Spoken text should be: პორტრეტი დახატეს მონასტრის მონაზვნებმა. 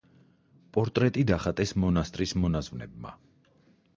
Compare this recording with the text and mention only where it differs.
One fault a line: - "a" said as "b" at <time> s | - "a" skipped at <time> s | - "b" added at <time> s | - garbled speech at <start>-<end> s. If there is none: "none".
none